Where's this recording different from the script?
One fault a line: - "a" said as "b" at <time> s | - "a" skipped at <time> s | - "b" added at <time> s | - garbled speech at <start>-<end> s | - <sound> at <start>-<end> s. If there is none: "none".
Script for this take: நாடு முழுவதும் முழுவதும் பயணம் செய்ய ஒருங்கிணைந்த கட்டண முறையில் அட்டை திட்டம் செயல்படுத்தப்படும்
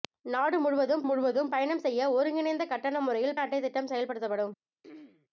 - throat clearing at 4.8-5.3 s